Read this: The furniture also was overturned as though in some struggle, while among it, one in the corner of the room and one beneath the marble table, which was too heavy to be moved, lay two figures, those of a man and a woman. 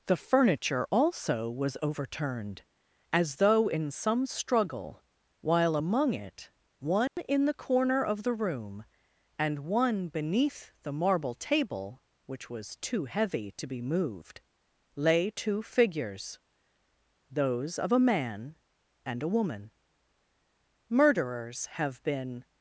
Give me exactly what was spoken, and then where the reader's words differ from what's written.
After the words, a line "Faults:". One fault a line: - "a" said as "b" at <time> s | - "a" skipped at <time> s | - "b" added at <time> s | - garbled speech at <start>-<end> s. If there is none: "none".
The furniture also was overturned as though in some struggle, while among it, one in the corner of the room and one beneath the marble table, which was too heavy to be moved, lay two figures, those of a man and a woman. "Murderers have been
Faults:
- "Murderers have been" added at 20.9 s